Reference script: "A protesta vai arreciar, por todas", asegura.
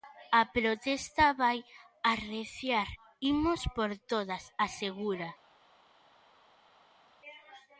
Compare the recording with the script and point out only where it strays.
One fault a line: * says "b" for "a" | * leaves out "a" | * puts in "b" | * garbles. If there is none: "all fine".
* puts in "imos"